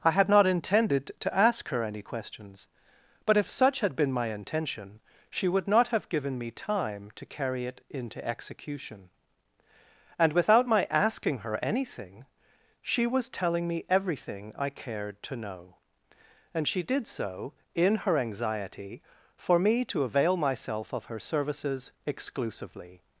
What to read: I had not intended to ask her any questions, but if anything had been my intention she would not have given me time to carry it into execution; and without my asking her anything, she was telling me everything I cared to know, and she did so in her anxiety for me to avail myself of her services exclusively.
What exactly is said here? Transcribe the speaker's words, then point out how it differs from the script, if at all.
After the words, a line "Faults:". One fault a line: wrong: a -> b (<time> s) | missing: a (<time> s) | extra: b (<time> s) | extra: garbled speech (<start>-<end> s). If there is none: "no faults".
I had not intended to ask her any questions, but if such had been my intention she would not have given me time to carry it into execution; and without my asking her anything, she was telling me everything I cared to know, and she did so in her anxiety for me to avail myself of her services exclusively.
Faults:
wrong: anything -> such (3.5 s)